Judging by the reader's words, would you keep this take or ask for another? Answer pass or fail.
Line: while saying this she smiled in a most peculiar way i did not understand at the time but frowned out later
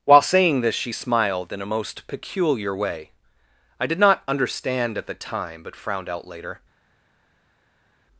pass